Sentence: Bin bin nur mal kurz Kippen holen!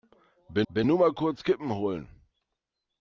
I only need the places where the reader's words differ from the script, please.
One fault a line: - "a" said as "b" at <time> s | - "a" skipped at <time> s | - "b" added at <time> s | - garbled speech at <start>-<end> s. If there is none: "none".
none